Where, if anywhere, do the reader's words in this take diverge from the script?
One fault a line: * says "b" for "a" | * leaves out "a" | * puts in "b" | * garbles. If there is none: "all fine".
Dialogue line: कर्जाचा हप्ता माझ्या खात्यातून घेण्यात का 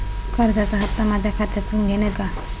all fine